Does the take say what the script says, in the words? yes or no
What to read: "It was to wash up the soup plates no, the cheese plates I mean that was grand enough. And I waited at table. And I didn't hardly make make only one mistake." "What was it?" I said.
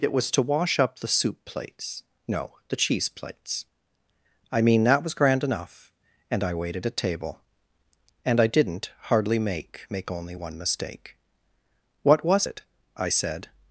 yes